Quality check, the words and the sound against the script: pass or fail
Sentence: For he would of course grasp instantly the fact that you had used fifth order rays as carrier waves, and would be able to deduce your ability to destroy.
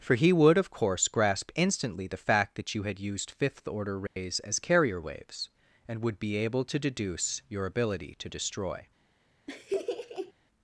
fail